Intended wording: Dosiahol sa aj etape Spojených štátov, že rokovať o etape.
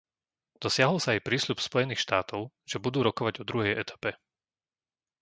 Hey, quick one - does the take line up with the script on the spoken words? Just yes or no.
no